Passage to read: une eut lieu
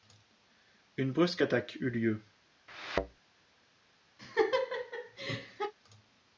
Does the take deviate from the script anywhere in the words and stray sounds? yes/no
yes